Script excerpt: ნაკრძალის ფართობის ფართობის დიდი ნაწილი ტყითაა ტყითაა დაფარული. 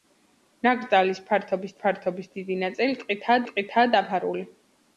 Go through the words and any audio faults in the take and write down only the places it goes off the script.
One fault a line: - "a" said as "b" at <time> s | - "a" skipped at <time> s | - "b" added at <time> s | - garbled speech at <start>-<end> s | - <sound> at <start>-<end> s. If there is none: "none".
none